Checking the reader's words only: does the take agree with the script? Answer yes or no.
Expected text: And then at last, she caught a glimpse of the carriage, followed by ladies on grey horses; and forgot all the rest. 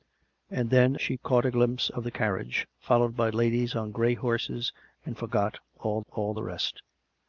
no